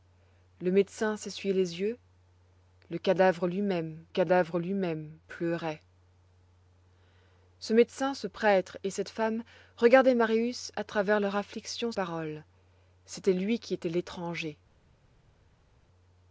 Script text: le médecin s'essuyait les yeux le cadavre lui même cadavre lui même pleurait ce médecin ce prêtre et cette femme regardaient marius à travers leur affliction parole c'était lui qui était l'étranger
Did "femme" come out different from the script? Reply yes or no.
no